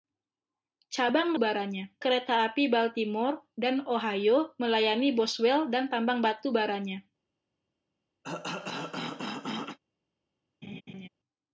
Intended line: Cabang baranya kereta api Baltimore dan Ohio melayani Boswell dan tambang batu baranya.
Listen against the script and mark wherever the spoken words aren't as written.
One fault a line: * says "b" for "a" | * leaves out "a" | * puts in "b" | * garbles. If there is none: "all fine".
all fine